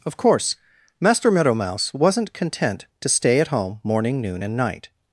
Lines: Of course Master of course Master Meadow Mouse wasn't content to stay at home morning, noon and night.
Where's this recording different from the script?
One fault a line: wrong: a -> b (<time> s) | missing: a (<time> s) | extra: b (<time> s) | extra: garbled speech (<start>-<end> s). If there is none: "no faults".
missing: of course Master (1.3 s)